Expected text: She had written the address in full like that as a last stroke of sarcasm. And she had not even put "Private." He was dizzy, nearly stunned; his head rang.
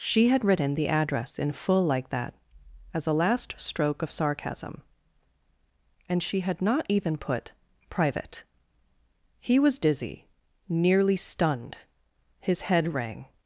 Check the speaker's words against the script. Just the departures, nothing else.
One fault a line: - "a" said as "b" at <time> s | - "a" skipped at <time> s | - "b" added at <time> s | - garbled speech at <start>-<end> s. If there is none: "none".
none